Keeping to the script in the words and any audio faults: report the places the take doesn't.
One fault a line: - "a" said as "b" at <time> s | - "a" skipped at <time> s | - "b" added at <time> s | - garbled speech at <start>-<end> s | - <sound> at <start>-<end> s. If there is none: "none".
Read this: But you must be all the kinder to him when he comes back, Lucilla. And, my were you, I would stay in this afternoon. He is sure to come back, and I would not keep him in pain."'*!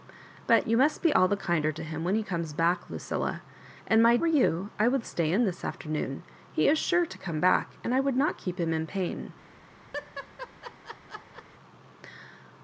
- laugh at 9.9-11.4 s